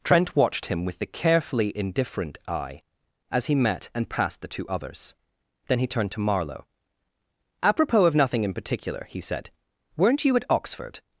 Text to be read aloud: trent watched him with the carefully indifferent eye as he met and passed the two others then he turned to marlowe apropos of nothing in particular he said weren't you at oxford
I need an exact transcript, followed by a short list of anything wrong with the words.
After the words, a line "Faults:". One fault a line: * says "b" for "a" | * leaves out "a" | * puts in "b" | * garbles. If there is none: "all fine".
trent watched him with the carefully indifferent eye as he met and passed the two others then he turned to marlowe apropos of nothing in particular he said weren't you at oxford
Faults:
all fine